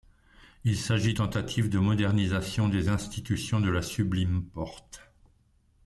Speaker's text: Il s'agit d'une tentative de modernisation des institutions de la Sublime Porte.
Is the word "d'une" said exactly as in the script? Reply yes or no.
no